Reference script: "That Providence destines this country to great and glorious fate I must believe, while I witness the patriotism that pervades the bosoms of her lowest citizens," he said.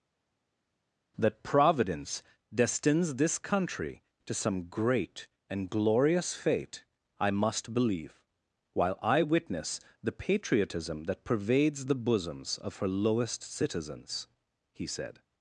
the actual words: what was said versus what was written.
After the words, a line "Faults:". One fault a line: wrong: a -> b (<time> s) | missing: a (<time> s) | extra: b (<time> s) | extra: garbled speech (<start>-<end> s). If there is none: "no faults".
"That Providence destines this country to some great and glorious fate I must believe, while I witness the patriotism that pervades the bosoms of her lowest citizens," he said.
Faults:
extra: some (4.3 s)